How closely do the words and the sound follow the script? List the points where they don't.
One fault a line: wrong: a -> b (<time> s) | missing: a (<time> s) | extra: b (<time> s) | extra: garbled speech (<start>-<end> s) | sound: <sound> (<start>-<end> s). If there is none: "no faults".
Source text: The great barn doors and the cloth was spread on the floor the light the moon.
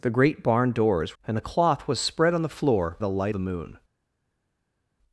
no faults